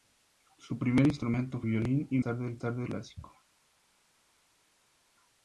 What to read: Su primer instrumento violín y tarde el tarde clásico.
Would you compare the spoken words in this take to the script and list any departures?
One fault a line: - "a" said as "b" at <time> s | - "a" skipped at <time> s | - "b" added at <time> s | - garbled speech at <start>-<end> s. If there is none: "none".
none